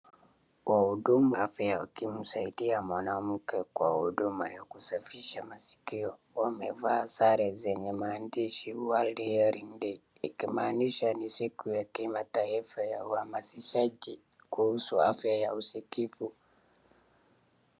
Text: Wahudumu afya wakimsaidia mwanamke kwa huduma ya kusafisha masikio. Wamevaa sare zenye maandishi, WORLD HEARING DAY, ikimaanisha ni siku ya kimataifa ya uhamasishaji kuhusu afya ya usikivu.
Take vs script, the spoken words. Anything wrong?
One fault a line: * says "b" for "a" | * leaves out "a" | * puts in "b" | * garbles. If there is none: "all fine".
all fine